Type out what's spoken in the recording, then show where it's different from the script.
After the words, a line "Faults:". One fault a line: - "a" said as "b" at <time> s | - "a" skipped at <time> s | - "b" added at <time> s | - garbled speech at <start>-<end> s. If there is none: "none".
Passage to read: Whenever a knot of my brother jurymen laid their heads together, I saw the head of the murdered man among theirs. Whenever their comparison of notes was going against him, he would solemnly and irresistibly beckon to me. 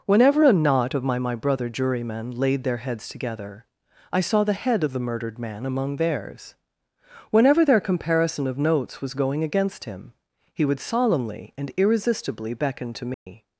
Whenever a knot of my my brother jurymen laid their heads together, I saw the head of the murdered man among theirs. Whenever their comparison of notes was going against him, he would solemnly and irresistibly beckon to me.
Faults:
- "my" added at 1.2 s